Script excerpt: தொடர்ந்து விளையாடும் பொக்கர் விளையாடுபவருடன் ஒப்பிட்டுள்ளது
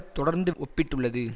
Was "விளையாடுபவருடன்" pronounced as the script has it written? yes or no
no